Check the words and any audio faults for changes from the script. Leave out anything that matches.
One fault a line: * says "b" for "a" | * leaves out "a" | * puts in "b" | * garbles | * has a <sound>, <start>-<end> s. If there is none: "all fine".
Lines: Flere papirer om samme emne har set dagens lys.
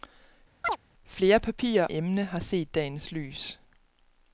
* has a chirp, 0.6-0.8 s
* leaves out "om samme"